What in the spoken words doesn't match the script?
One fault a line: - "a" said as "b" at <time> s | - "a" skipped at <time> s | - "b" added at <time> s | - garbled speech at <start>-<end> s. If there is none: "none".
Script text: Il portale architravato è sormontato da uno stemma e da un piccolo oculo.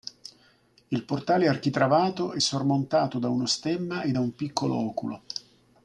none